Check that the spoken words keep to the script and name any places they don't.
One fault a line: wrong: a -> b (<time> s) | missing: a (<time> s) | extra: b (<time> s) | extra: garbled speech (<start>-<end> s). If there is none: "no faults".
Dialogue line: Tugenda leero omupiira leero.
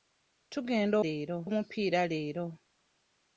no faults